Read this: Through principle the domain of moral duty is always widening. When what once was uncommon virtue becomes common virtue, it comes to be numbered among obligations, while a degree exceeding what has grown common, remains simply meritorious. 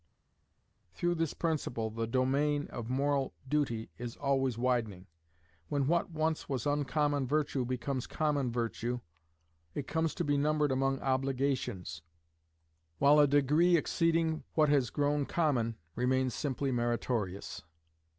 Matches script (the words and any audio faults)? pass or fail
fail